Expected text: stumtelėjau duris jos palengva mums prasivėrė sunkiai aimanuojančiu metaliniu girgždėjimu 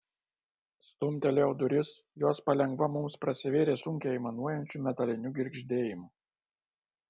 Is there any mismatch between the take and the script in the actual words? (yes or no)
no